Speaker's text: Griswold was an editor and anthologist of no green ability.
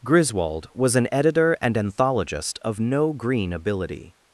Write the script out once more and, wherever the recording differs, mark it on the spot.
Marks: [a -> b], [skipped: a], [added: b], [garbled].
Griswold was an editor and anthologist of no green ability.